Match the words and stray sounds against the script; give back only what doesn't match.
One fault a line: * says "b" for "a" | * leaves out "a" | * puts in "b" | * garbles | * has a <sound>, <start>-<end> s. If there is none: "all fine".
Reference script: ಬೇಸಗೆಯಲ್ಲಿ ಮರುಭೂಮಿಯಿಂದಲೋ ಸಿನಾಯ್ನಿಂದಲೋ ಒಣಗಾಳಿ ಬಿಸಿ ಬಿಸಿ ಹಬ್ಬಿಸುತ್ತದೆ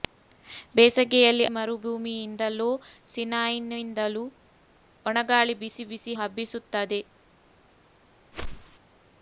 * has a whoosh, 8.3-8.8 s